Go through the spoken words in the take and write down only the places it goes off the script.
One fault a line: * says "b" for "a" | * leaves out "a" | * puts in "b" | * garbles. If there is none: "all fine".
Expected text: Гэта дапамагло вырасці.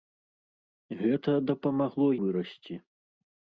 all fine